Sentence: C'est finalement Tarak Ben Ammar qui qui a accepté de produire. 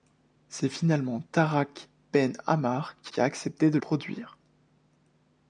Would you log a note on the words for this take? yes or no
no